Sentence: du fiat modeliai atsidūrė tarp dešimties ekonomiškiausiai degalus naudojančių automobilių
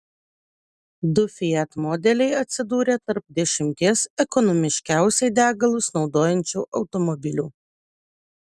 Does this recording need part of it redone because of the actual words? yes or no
no